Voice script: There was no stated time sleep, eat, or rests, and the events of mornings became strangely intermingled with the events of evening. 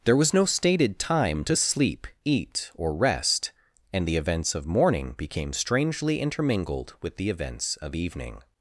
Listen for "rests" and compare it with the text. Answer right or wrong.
wrong